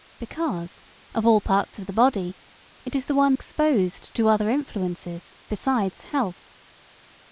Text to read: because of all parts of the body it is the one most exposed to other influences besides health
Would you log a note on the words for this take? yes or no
yes